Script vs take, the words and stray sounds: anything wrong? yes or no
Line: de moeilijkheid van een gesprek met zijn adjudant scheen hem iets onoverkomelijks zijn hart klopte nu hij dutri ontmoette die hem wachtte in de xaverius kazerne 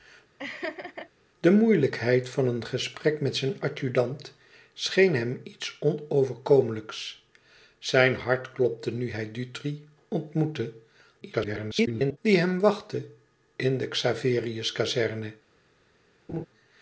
yes